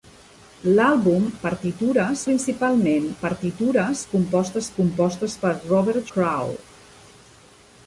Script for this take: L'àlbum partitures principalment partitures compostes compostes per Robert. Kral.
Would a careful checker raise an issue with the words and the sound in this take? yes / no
no